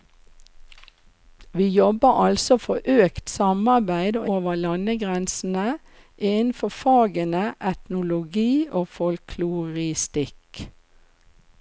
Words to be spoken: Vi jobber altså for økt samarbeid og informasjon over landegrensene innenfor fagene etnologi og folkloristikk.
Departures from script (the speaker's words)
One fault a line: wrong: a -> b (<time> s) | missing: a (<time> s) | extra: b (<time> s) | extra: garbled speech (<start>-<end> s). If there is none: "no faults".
missing: informasjon (4.3 s)